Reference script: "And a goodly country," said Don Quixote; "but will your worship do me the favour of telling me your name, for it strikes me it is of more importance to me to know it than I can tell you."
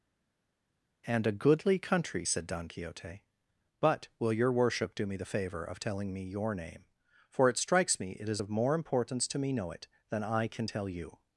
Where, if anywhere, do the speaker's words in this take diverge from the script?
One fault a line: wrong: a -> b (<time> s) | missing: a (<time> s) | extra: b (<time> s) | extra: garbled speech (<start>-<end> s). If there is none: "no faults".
missing: to (9.5 s)